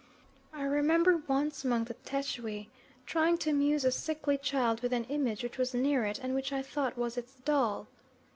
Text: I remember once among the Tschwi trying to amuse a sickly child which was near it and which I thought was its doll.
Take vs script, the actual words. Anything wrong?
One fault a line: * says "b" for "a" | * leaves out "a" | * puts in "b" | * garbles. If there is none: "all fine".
* puts in "with an image"